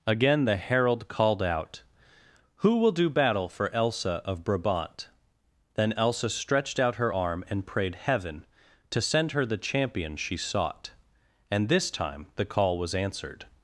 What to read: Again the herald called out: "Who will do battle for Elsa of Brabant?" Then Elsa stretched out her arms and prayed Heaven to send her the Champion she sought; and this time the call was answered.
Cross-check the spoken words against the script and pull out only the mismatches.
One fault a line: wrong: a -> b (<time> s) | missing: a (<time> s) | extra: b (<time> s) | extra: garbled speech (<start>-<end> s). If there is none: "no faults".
wrong: arms -> arm (7.1 s)